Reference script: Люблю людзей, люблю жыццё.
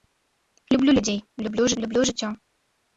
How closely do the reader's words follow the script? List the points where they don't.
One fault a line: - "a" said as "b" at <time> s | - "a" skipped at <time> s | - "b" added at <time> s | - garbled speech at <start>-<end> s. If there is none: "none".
- "люблю" added at 1.8 s